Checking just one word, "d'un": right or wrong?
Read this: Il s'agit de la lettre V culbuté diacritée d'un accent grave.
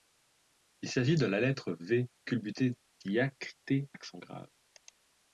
wrong